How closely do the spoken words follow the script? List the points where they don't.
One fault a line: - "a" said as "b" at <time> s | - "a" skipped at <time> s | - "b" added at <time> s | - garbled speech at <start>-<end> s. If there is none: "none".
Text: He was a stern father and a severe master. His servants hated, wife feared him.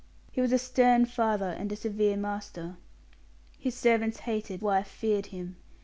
none